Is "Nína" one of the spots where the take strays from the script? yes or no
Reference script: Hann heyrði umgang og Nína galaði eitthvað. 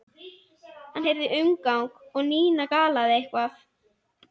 no